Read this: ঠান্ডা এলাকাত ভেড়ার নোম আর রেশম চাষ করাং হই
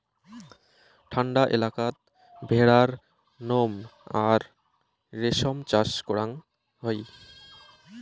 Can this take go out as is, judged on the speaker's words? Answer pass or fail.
pass